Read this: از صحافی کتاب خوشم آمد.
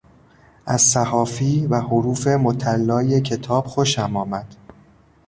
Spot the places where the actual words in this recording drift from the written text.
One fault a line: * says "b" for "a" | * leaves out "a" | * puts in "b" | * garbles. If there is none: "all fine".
* puts in "و حروف مطلای"